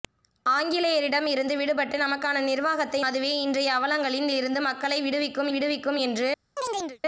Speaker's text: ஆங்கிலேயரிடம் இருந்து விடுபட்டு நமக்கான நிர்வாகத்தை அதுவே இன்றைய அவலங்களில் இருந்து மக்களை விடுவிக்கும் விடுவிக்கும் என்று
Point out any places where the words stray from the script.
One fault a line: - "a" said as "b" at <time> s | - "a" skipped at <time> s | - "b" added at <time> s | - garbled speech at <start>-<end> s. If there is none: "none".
none